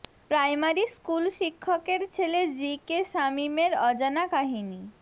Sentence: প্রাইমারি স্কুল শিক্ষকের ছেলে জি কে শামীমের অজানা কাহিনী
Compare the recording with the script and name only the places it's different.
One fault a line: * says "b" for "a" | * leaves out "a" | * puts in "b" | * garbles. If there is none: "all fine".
all fine